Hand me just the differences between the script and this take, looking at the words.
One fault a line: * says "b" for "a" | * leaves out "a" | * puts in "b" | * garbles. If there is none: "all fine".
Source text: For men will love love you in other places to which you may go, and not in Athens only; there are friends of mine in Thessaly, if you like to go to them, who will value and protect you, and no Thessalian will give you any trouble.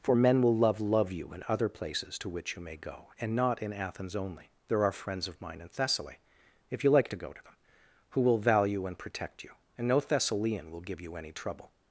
all fine